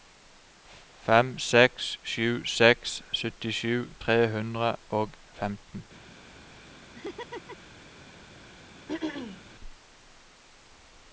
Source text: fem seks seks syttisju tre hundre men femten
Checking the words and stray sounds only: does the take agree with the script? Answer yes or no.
no